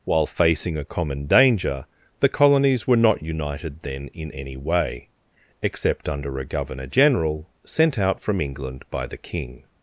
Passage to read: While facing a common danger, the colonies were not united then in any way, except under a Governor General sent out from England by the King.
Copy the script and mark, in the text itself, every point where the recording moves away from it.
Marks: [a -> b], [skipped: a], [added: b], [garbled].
While facing a common danger, the colonies were not united then in any way, except under a Governor General sent out from England by the King.